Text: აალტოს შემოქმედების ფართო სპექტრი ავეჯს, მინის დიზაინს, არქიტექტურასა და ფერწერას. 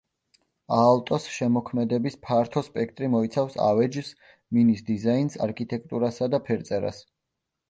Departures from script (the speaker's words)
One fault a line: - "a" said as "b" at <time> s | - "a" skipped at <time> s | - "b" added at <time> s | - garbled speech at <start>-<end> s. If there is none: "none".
- "მოიცავს" added at 3.2 s